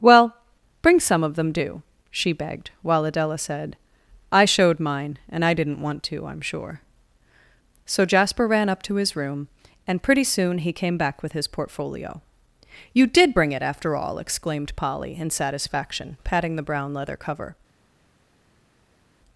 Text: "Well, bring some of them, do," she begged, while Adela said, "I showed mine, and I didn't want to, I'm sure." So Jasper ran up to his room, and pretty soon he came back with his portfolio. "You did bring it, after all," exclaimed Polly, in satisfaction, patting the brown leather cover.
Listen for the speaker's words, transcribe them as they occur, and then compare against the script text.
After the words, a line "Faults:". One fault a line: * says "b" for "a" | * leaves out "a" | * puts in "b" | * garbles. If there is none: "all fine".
"Well, bring some of them, do," she begged, while Adela said, "I showed mine, and I didn't want to, I'm sure." So Jasper ran up to his room, and pretty soon he came back with his portfolio. "You did bring it, after all," exclaimed Polly, in satisfaction, patting the brown leather cover.
Faults:
all fine